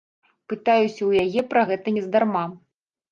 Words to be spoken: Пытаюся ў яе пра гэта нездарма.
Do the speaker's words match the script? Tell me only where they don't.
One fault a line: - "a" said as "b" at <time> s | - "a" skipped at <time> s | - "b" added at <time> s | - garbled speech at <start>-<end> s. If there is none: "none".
none